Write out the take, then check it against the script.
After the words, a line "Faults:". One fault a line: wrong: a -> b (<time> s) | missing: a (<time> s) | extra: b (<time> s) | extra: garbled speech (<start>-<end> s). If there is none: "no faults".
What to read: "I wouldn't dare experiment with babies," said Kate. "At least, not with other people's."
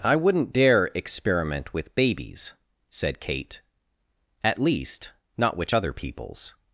"I wouldn't dare experiment with babies," said Kate. "At least, not which other people's."
Faults:
wrong: with -> which (5.6 s)